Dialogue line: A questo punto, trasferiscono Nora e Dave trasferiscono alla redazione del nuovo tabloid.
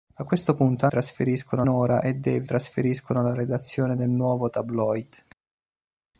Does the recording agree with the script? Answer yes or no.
yes